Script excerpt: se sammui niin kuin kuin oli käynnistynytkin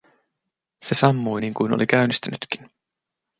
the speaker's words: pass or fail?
fail